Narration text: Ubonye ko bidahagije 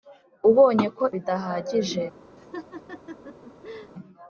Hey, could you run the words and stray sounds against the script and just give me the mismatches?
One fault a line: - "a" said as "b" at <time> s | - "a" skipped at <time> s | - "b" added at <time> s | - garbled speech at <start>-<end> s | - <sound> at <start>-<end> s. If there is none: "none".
- laugh at 2.4-3.9 s